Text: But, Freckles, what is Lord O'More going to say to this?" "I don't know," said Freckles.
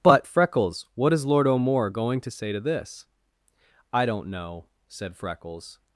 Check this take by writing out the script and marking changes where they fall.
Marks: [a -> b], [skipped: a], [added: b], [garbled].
But, Freckles, what is Lord O'More going to say to this?" "I don't know," said Freckles.